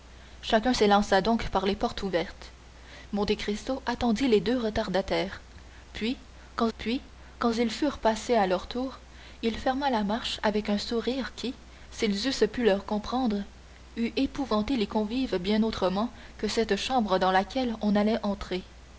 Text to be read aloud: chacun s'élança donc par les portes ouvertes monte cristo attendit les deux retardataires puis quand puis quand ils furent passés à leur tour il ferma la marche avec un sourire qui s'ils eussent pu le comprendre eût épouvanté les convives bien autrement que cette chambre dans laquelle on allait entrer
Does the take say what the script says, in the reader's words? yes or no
yes